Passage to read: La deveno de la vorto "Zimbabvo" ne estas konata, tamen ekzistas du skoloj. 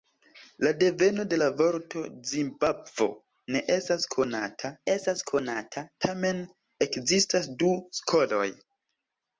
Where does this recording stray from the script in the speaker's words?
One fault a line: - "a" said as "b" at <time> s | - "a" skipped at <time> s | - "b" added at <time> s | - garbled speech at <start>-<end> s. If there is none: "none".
- "estas konata" added at 4.9 s